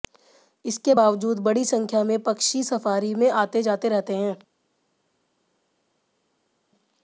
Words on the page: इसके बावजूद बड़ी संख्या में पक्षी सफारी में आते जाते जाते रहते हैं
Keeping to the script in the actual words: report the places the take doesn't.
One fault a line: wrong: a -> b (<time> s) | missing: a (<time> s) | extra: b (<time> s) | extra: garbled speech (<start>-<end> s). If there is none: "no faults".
missing: जाते (3.9 s)